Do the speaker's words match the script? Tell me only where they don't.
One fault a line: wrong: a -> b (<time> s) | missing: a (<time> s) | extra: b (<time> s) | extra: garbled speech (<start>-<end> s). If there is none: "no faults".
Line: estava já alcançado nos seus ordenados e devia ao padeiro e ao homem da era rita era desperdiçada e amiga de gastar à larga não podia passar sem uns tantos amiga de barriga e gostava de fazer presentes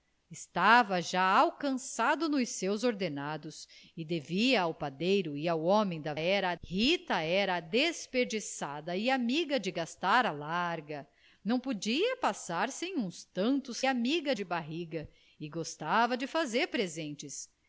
no faults